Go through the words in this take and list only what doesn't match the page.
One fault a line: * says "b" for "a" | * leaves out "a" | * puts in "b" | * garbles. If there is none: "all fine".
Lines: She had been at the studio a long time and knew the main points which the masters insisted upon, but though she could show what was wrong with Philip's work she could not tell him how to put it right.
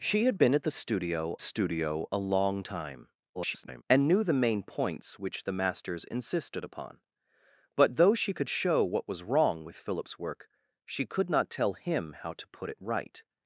* puts in "studio"
* garbles